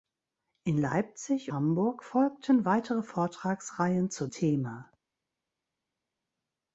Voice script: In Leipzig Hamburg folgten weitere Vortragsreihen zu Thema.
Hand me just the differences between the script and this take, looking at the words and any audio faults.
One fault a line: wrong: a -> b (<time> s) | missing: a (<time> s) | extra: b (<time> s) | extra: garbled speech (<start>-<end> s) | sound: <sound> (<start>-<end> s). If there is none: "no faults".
no faults